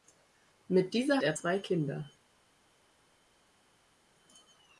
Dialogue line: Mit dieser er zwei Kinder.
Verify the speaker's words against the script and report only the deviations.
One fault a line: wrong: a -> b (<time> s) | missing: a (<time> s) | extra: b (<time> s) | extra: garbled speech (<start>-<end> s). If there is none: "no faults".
no faults